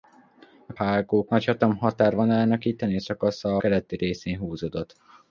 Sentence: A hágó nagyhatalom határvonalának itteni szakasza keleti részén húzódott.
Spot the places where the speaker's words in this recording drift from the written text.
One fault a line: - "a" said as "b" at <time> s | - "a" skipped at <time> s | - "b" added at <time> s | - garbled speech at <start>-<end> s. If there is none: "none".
none